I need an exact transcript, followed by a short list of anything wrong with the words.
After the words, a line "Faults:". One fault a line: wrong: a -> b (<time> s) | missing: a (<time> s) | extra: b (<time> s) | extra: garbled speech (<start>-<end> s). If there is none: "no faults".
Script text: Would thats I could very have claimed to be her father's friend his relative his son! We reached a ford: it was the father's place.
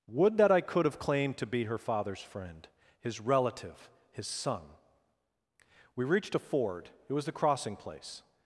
Would that I could have claimed to be her father's friend his relative his son! We reached a ford: it was the crossing place.
Faults:
wrong: thats -> that (0.4 s)
missing: very (0.8 s)
wrong: father's -> crossing (7.3 s)